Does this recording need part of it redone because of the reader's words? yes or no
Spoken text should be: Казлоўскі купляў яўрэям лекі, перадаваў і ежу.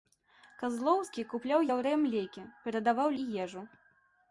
no